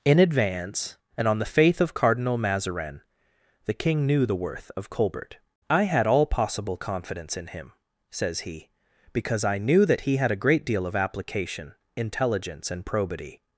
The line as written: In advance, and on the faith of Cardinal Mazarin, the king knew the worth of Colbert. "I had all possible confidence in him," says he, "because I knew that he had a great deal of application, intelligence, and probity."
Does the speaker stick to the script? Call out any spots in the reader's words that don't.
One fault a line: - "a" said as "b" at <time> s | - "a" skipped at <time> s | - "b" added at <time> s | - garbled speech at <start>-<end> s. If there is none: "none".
none